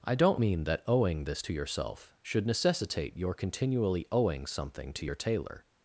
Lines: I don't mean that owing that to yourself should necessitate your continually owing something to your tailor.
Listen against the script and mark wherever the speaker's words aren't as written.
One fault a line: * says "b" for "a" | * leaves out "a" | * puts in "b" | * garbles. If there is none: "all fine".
* says "this" for "that"